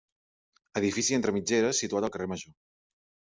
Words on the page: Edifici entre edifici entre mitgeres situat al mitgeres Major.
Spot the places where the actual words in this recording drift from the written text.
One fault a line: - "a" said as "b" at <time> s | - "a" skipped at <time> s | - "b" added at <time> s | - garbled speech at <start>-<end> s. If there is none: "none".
- "edifici entre" skipped at 1.3 s
- "mitgeres" said as "carrer" at 2.2 s